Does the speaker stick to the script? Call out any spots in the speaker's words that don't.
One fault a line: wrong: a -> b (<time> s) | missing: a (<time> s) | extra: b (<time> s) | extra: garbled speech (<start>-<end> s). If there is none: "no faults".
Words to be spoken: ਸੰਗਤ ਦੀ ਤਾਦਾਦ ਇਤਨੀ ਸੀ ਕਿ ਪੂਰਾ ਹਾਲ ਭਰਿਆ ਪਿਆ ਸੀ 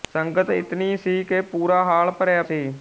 missing: ਦੀ ਤਾਦਾਦ (0.5 s)
missing: ਪਿਆ (2.4 s)